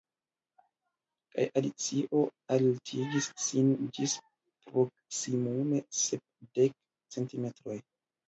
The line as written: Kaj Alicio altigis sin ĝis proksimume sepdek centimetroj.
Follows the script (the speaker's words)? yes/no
yes